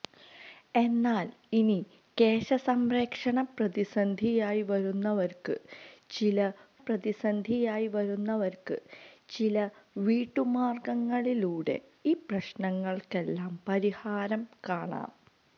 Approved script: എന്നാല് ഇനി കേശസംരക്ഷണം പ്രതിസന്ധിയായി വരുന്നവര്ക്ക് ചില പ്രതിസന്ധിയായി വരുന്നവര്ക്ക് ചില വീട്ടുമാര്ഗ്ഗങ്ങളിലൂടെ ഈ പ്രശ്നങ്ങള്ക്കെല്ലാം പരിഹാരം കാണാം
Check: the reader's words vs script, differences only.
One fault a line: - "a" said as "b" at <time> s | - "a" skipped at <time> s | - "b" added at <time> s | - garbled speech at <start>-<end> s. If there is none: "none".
none